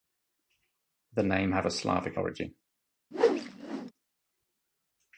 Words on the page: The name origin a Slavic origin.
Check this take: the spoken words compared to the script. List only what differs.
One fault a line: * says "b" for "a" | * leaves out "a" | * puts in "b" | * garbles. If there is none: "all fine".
* says "have" for "origin"